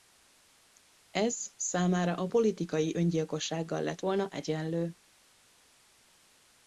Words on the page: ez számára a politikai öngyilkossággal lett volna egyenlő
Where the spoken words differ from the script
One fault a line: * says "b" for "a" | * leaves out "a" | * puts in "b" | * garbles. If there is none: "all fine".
all fine